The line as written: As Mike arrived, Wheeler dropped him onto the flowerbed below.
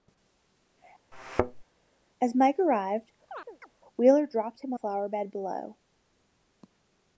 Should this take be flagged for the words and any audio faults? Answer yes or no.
yes